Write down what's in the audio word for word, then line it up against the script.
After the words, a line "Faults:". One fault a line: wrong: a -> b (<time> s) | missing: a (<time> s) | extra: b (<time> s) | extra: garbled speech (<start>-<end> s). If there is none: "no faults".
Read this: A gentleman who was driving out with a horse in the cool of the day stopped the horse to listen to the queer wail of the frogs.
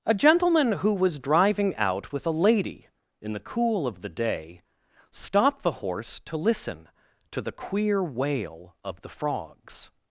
A gentleman who was driving out with a lady in the cool of the day stopped the horse to listen to the queer wail of the frogs.
Faults:
wrong: horse -> lady (2.3 s)